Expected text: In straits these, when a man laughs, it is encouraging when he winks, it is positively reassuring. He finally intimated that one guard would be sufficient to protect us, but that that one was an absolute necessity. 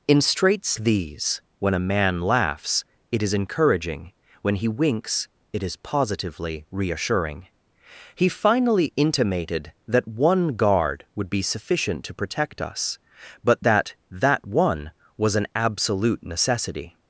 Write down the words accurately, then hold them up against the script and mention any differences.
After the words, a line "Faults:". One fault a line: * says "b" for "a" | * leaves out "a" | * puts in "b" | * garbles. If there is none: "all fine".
In straits these, when a man laughs, it is encouraging when he winks, it is positively reassuring. He finally intimated that one guard would be sufficient to protect us, but that that one was an absolute necessity.
Faults:
all fine